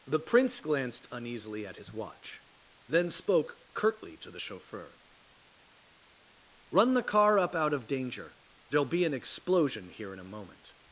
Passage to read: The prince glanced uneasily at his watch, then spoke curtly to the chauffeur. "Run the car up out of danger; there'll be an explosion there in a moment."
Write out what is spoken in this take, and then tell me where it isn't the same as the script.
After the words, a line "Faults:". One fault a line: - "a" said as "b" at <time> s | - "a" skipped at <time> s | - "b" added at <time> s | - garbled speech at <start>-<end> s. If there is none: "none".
The prince glanced uneasily at his watch, then spoke curtly to the chauffeur. "Run the car up out of danger; there'll be an explosion here in a moment."
Faults:
- "there" said as "here" at 9.9 s